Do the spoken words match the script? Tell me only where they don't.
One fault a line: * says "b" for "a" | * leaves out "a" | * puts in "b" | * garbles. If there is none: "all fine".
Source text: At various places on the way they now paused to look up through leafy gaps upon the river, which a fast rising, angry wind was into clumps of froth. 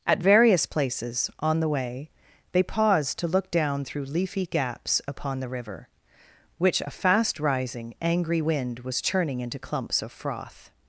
* leaves out "now"
* says "down" for "up"
* puts in "churning"